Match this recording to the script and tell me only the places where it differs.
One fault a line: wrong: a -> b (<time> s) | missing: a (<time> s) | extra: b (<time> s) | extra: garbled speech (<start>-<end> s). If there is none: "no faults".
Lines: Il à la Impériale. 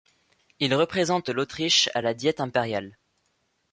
extra: représente l'Autriche (0.7 s)
extra: Diète (2.1 s)